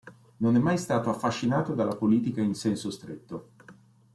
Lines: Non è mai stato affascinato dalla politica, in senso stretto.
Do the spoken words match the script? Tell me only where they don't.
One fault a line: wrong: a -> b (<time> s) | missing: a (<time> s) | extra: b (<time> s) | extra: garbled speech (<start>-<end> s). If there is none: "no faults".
no faults